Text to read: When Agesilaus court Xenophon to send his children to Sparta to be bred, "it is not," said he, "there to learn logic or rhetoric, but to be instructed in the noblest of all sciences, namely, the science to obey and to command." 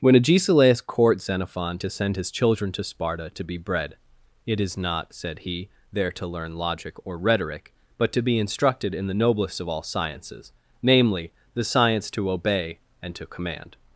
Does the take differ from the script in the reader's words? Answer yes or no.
no